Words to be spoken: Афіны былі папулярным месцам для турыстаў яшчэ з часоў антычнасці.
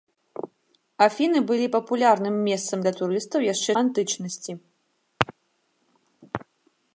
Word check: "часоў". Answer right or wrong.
wrong